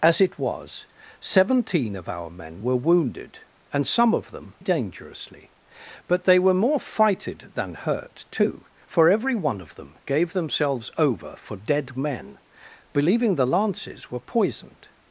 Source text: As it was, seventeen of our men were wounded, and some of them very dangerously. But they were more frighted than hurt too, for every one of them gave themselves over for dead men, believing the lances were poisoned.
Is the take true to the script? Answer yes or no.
no